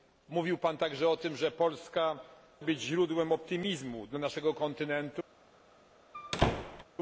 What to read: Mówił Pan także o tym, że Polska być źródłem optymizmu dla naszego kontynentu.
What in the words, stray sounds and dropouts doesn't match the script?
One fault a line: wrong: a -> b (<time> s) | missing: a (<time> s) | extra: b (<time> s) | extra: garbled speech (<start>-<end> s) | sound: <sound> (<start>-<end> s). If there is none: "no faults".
sound: squeak (6.1-6.8 s)